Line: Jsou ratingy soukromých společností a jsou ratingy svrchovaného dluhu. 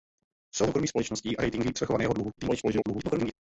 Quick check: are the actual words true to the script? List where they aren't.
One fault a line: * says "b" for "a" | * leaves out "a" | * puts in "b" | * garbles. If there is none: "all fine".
* leaves out "ratingy"
* leaves out "jsou"
* garbles